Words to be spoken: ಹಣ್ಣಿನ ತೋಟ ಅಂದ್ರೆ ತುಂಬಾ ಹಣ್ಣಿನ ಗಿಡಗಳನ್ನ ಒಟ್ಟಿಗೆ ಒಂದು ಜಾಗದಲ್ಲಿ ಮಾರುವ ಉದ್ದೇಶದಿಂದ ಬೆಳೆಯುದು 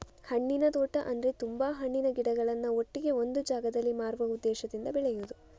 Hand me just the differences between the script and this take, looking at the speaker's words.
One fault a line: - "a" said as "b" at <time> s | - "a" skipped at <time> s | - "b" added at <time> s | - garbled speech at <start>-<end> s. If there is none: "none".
none